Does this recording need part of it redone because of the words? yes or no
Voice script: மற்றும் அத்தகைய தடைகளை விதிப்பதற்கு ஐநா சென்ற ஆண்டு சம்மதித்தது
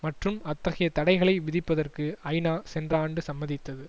no